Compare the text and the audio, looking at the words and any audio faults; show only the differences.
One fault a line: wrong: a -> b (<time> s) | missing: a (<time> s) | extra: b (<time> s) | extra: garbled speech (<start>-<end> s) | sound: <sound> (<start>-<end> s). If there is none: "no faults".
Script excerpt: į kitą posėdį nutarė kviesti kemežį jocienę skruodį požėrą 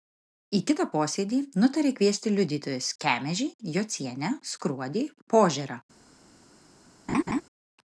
extra: liudytojus (2.4 s)
sound: laugh (7.1-7.4 s)